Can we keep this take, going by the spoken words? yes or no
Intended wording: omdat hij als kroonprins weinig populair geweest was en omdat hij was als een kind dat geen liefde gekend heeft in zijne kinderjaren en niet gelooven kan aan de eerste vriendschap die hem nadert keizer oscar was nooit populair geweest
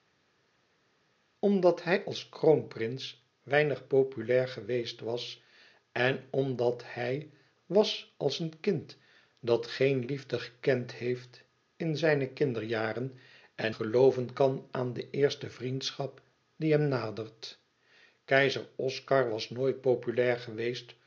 no